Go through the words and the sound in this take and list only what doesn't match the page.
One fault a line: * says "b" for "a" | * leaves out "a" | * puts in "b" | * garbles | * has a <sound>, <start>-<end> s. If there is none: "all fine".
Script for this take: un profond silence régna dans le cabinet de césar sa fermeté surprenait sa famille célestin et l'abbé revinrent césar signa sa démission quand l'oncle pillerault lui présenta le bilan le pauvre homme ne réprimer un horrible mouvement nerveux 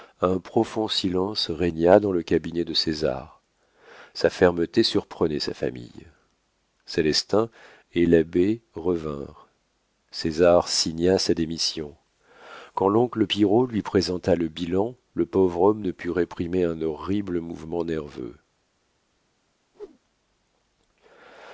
* puts in "put"
* has a whoosh, 19.7-20.0 s